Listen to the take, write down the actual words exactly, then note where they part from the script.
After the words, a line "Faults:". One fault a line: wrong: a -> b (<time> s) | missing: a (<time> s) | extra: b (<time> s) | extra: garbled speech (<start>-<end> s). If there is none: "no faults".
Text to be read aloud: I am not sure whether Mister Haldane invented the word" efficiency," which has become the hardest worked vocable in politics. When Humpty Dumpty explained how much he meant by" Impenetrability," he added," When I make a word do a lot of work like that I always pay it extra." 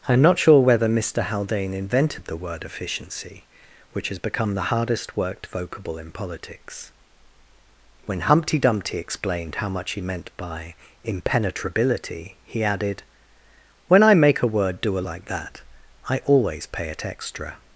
I am not sure whether Mister Haldane invented the word" efficiency," which has become the hardest worked vocable in politics. When Humpty Dumpty explained how much he meant by" Impenetrability," he added," When I make a word do a like that I always pay it extra."
Faults:
missing: lot of work (15.0 s)